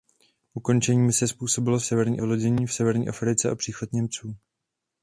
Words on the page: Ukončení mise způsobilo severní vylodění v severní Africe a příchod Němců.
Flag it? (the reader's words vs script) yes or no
no